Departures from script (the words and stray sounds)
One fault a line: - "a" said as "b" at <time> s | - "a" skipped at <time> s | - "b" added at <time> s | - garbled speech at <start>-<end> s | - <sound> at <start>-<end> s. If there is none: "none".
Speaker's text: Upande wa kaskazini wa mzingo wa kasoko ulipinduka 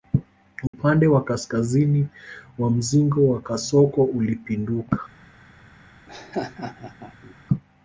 - dropout at 0.7-0.7 s
- laugh at 6.1-7.3 s